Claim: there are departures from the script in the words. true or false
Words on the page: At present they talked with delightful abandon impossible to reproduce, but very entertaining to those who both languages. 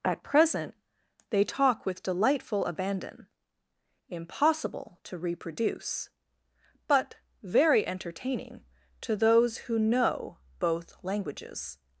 true